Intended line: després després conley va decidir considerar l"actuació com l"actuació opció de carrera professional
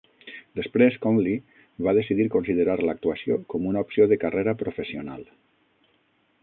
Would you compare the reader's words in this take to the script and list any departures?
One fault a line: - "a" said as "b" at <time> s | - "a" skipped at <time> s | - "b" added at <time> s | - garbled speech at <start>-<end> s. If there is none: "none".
- "després" skipped at 0.9 s
- "l"actuació" said as "una" at 3.7 s